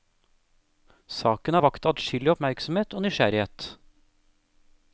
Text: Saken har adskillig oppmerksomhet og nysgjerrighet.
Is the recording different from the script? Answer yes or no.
yes